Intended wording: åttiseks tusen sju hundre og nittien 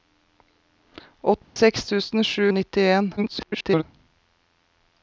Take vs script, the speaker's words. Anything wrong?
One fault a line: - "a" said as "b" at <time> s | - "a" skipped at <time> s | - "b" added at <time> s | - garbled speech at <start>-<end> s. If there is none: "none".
- "hundre" skipped at 2.5 s
- garbled speech at 3.2-3.8 s